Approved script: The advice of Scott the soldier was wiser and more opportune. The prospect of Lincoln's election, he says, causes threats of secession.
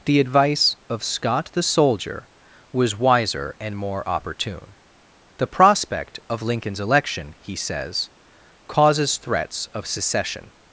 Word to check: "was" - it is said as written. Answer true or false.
true